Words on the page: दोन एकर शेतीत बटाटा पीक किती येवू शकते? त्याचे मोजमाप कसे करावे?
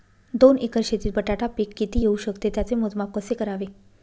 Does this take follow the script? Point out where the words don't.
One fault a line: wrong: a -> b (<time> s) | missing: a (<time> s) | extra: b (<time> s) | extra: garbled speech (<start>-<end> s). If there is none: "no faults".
no faults